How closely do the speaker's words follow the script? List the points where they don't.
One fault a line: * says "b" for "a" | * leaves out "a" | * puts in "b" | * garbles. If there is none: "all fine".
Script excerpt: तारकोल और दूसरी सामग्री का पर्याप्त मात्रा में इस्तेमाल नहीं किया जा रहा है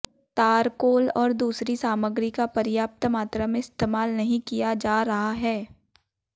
all fine